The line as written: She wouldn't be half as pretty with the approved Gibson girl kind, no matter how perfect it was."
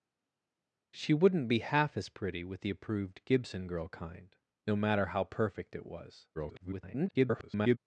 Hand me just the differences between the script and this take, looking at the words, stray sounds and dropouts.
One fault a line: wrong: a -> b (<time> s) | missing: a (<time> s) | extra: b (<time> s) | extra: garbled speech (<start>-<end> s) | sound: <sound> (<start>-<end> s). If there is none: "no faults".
extra: garbled speech (6.3-7.8 s)